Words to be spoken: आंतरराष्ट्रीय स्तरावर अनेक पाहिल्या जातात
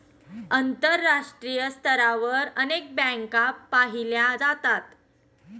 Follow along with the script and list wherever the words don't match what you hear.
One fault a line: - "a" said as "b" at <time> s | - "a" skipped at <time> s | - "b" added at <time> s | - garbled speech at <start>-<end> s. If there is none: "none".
- "बँका" added at 3.0 s